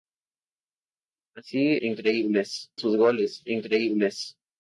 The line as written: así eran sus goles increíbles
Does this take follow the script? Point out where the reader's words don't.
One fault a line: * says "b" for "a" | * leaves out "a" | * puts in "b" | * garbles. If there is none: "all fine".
* says "increíbles" for "eran"